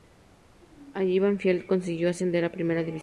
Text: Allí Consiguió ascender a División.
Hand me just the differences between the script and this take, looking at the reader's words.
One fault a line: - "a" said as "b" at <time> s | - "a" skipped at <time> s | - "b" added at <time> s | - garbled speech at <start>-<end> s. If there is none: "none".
- "Banfield" added at 1.2 s
- "Primera" added at 2.5 s